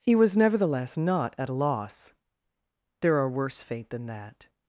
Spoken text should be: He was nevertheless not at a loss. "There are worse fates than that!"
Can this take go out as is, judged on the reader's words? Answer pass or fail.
fail